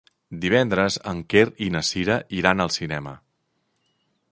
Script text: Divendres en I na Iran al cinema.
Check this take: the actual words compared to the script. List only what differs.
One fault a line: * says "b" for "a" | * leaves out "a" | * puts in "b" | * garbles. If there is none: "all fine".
* puts in "Quer"
* puts in "Cira"